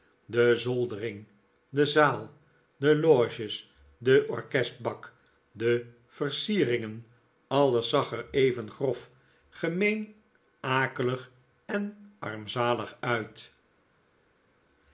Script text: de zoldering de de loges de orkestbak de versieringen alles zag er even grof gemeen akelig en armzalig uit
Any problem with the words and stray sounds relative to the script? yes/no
yes